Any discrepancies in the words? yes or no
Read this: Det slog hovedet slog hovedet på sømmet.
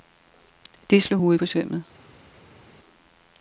yes